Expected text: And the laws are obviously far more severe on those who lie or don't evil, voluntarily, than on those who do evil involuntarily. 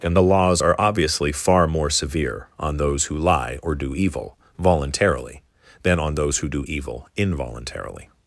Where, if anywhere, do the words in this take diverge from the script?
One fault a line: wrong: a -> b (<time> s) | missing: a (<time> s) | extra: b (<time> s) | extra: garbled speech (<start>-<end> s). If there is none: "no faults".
wrong: don't -> do (3.7 s)